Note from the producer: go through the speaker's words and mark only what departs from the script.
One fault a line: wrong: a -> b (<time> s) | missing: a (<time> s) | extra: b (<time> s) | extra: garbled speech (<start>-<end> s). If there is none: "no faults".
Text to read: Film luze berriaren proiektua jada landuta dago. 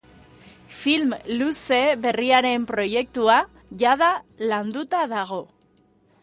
no faults